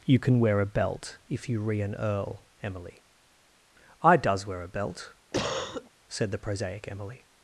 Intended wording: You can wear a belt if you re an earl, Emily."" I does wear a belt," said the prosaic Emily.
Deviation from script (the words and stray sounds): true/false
true